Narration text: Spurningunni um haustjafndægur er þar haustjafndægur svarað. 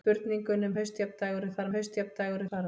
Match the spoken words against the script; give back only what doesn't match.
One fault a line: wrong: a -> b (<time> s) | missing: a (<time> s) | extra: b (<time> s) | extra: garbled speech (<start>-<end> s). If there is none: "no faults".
no faults